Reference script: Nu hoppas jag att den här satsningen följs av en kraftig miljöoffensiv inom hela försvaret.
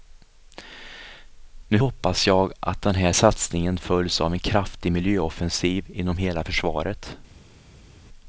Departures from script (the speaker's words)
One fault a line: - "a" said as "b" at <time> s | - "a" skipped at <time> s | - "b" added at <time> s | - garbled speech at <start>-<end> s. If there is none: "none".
none